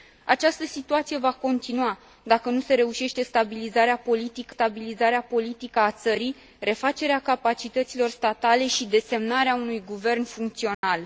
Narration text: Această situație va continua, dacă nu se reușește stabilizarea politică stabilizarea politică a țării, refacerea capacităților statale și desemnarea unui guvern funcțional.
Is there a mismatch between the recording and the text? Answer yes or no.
no